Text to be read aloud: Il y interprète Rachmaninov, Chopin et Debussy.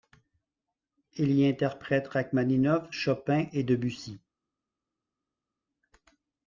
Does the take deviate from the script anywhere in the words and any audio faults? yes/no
no